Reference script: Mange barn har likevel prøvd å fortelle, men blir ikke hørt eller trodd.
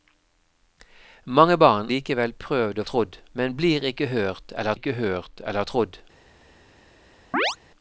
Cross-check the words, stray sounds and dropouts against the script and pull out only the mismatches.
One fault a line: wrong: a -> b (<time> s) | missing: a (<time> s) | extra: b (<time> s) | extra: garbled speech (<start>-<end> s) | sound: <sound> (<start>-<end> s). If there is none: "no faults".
missing: har (1.9 s)
wrong: fortelle -> trodd (2.9 s)
extra: ikke hørt eller (4.7 s)
sound: chirp (7.3-7.6 s)